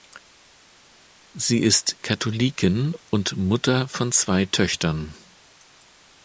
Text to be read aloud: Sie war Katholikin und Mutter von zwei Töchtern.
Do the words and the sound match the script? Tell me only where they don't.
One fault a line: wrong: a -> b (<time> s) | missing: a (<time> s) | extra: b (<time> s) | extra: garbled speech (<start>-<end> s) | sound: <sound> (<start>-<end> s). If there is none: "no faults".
wrong: war -> ist (1.6 s)